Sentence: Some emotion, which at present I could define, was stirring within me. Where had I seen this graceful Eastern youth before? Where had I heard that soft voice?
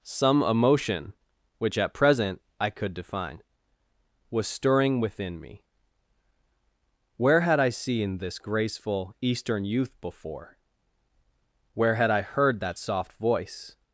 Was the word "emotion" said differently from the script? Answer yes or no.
no